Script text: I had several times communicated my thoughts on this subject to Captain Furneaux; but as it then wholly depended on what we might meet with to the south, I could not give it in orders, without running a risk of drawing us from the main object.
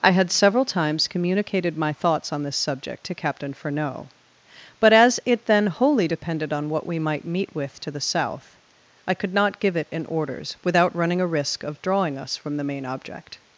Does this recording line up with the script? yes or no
yes